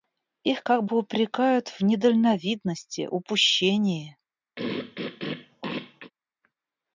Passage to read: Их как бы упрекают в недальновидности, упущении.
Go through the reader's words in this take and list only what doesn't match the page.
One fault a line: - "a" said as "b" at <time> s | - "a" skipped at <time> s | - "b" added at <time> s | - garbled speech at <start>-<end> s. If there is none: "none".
none